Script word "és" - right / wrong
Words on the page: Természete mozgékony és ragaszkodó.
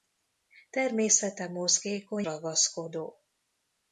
wrong